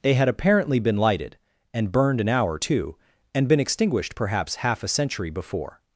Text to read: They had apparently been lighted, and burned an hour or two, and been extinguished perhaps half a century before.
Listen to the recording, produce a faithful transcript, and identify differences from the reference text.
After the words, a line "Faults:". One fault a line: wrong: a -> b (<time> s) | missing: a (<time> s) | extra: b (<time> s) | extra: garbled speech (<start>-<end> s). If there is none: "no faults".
They had apparently been lighted, and burned an hour too, and been extinguished perhaps half a century before.
Faults:
wrong: or two -> too (2.6 s)